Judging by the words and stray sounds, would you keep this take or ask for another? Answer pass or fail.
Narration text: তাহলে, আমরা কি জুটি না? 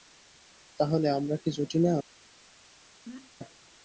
fail